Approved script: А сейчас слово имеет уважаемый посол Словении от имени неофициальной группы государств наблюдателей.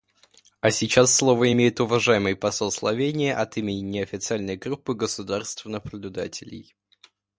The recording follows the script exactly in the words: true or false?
true